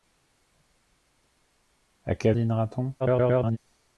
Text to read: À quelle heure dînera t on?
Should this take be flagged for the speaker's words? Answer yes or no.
yes